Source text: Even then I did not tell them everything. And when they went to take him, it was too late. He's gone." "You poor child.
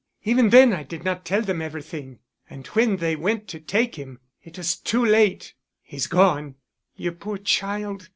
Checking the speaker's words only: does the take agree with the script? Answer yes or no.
yes